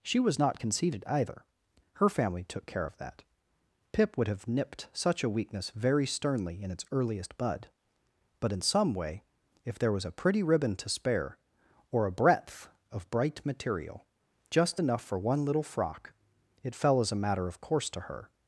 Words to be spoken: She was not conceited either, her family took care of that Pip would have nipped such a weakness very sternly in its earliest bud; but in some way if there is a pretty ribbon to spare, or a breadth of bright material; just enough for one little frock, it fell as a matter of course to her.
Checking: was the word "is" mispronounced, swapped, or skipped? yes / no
yes